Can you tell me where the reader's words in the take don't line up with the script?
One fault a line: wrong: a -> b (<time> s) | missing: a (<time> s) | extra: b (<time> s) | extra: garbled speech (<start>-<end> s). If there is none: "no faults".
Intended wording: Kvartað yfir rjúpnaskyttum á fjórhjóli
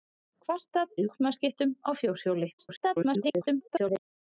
missing: yfir (0.9 s)
extra: garbled speech (2.6-4.0 s)